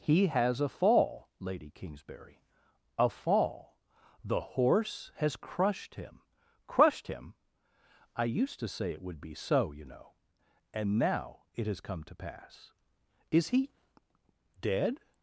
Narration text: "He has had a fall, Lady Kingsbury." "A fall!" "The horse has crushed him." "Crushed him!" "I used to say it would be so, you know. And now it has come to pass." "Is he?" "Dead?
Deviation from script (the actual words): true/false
true